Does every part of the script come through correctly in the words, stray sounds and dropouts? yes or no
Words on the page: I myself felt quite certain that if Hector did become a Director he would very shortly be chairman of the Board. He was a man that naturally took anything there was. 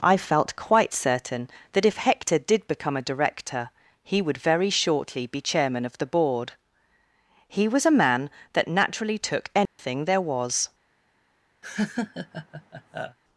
no